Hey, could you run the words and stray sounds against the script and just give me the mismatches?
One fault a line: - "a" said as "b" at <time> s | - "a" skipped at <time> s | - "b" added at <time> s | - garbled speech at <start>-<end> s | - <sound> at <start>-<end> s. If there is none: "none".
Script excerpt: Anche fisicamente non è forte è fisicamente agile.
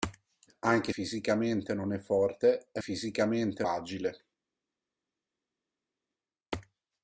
none